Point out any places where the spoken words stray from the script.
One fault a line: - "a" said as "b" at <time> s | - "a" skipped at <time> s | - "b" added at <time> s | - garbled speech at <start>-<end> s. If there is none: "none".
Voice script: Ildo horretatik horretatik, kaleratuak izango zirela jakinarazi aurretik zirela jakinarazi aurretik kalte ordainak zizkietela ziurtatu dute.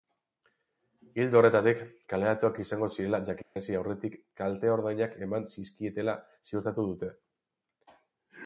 - "horretatik" skipped at 1.8 s
- "zirela jakinarazi aurretik" skipped at 4.2 s
- "eman" added at 5.3 s